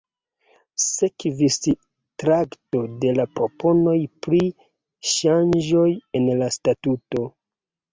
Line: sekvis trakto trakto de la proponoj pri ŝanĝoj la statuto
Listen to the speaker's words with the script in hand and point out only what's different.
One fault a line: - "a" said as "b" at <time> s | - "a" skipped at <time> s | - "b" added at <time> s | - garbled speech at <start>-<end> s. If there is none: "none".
- "trakto" skipped at 2.8 s
- "en" added at 6.2 s